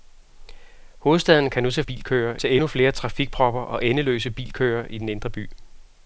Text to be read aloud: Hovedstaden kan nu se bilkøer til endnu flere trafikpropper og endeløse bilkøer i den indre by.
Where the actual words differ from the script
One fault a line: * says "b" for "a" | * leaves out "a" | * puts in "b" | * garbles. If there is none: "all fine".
all fine